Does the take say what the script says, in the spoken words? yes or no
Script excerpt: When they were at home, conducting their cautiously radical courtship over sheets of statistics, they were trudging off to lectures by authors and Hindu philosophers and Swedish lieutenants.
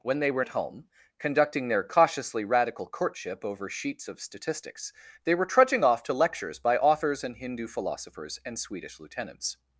yes